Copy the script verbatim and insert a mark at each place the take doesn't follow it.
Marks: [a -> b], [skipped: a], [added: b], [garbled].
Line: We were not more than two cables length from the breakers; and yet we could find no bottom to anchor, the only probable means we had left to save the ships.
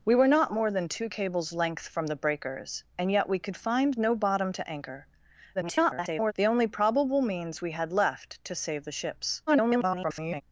We were not more than two cables length from the breakers; and yet we could find no bottom to anchor, [garbled] the only probable means we had left to save the ships. [garbled]